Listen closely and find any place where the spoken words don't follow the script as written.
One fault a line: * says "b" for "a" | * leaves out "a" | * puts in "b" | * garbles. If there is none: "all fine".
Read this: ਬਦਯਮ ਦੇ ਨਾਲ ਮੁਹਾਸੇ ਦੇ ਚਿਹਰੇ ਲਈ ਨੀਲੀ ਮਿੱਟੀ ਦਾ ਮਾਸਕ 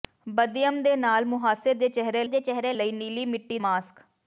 * puts in "ਦੇ ਚਿਹਰੇ"
* leaves out "ਦਾ"